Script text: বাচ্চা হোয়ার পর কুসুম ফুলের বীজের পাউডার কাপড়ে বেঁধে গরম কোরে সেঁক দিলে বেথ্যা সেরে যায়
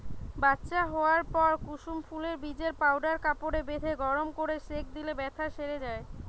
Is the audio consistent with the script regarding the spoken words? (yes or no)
yes